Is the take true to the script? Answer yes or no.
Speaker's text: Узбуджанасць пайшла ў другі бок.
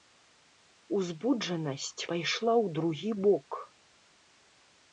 yes